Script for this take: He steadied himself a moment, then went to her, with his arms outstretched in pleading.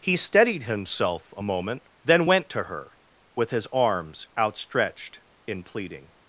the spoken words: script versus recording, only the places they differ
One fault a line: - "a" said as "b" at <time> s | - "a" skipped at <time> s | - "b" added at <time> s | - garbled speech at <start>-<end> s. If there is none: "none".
none